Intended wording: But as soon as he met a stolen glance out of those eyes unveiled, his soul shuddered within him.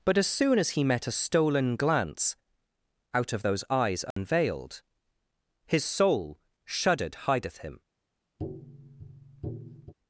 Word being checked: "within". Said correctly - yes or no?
no